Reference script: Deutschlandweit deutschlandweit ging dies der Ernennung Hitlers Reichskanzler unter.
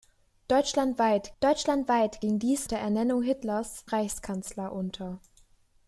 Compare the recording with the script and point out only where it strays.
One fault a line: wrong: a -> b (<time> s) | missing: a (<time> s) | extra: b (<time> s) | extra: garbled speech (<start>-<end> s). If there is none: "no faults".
no faults